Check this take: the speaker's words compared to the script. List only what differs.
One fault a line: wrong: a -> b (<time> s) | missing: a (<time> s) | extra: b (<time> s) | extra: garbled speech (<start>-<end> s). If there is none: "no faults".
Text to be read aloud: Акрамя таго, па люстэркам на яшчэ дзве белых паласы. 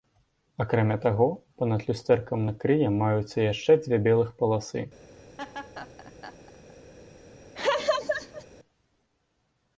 extra: над (1.7 s)
extra: крые маюцца (2.6 s)